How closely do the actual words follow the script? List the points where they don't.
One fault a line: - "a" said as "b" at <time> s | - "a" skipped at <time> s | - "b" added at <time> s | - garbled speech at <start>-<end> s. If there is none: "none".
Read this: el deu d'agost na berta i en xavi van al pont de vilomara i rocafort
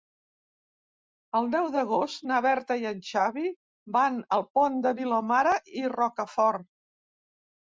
none